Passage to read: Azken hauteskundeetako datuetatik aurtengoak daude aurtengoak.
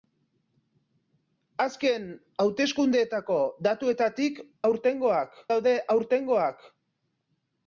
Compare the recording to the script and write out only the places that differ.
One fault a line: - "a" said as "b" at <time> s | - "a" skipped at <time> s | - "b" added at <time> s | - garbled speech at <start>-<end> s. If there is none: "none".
none